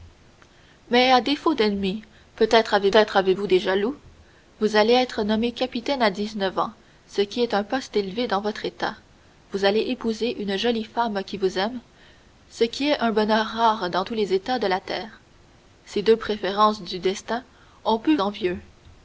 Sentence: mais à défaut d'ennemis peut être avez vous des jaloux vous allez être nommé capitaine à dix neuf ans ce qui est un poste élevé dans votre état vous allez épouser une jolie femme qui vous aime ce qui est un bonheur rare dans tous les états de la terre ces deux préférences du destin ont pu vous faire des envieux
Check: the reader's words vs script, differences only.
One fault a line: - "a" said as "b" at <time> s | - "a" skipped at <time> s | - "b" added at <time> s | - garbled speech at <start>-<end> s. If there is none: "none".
- "être avez" added at 2.9 s
- "vous faire des" skipped at 18.2 s